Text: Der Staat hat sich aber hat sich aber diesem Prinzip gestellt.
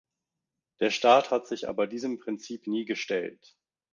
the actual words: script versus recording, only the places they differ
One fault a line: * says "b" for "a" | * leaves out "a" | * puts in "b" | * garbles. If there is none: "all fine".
* leaves out "hat sich aber"
* puts in "nie"